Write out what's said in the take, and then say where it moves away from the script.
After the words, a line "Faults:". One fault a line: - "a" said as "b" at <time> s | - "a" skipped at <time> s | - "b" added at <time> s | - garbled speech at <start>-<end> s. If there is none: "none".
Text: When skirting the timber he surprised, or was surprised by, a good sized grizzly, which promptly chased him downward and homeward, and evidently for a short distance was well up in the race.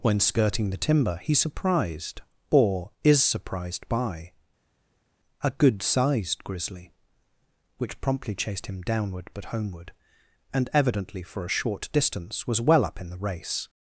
When skirting the timber he surprised, or is surprised by, a good sized grizzly, which promptly chased him downward but homeward, and evidently for a short distance was well up in the race.
Faults:
- "was" said as "is" at 3.0 s
- "and" said as "but" at 9.3 s